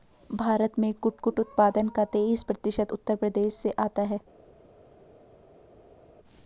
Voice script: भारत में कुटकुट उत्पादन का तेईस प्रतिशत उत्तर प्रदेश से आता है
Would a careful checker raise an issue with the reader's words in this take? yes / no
no